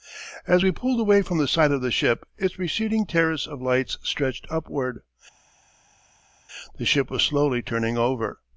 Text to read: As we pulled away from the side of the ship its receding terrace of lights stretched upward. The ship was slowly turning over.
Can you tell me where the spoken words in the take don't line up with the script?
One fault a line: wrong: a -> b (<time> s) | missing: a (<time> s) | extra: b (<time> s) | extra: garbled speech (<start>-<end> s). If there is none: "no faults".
no faults